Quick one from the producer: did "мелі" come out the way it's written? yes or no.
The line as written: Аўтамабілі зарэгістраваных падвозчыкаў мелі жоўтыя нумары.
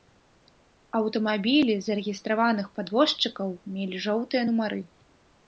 yes